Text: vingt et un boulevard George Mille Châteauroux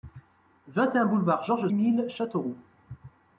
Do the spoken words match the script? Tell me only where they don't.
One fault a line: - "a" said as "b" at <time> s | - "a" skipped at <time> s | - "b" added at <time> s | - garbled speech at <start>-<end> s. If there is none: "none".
none